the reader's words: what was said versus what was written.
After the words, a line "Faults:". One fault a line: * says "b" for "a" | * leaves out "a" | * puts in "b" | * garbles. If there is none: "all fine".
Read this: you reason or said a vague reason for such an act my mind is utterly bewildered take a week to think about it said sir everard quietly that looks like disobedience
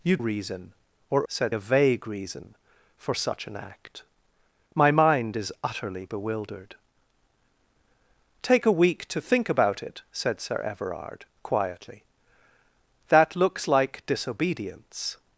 you reason or said a vague reason for such an act my mind is utterly bewildered take a week to think about it said sir everard quietly that looks like disobedience
Faults:
all fine